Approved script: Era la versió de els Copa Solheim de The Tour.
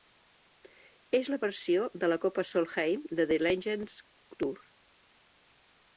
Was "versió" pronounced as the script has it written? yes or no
yes